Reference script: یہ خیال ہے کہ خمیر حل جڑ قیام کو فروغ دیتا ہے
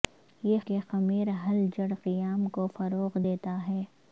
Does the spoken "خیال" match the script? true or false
false